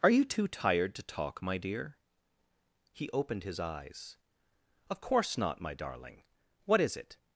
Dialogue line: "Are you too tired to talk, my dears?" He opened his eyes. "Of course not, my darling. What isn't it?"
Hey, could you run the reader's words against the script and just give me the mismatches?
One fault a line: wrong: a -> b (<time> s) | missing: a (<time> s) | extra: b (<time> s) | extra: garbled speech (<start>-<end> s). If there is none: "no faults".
wrong: dears -> dear (1.6 s)
wrong: isn't -> is (6.8 s)